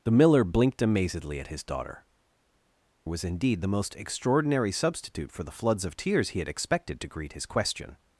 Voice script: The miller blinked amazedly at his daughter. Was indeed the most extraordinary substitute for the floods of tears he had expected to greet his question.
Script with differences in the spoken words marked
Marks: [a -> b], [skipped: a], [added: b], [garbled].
The miller blinked amazedly at his daughter. Was indeed the most extraordinary substitute for the floods of tears he had expected to greet his question.